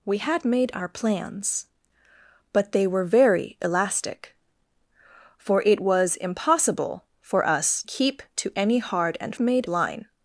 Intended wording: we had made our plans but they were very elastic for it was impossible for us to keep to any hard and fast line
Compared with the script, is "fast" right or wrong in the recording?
wrong